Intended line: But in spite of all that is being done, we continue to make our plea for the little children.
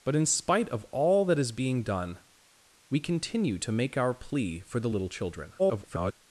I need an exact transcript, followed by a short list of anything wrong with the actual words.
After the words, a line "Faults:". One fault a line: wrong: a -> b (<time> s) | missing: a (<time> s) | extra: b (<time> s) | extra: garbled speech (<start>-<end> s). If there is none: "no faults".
But in spite of all that is being done, we continue to make our plea for the little children. [garbled]
Faults:
extra: garbled speech (5.6-6.1 s)